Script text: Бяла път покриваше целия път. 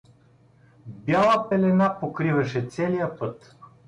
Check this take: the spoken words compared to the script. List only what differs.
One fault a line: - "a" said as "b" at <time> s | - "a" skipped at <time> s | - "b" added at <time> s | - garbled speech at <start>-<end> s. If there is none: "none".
- "път" said as "пелена" at 1.5 s